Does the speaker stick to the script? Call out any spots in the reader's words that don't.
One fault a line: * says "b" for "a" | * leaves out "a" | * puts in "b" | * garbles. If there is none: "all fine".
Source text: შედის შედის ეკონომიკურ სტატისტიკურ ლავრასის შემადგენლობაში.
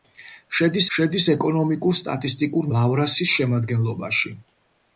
all fine